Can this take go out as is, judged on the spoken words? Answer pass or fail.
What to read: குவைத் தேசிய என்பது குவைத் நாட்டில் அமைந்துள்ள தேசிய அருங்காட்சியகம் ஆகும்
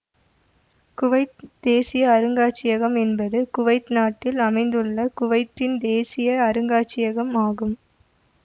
fail